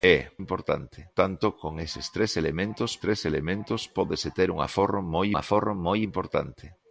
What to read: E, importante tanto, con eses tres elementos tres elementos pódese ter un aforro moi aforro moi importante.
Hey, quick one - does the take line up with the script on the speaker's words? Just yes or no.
yes